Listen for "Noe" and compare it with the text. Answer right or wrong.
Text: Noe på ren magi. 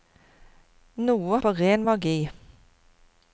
right